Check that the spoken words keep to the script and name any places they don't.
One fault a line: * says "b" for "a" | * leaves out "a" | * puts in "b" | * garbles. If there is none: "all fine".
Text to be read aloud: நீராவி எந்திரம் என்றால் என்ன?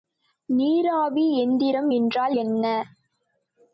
all fine